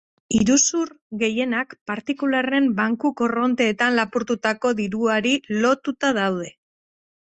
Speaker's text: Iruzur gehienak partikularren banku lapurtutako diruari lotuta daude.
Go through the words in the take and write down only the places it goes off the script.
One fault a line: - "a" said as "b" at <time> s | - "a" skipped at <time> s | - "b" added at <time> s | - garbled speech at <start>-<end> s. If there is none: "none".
- "korronteetan" added at 3.2 s